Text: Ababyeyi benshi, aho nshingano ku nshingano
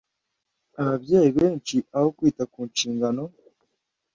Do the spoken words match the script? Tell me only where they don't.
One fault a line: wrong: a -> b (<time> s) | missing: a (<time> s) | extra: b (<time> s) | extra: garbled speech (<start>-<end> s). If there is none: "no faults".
wrong: nshingano -> kwita (2.2 s)